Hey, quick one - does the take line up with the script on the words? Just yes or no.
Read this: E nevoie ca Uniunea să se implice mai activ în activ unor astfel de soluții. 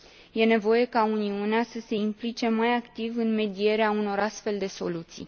no